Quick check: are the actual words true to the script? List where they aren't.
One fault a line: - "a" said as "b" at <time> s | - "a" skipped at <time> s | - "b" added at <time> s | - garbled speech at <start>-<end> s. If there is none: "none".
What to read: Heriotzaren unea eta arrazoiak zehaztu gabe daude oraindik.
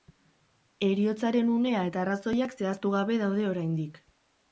none